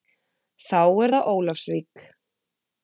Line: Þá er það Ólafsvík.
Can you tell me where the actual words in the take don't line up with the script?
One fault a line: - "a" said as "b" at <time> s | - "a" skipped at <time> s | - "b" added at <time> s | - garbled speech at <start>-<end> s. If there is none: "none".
none